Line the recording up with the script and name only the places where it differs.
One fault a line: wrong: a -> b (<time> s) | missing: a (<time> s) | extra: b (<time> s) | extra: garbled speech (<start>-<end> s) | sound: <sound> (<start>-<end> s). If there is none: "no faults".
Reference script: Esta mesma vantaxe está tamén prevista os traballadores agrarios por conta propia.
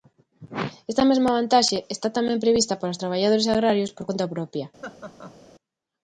extra: para (2.8 s)
sound: laugh (4.8-5.4 s)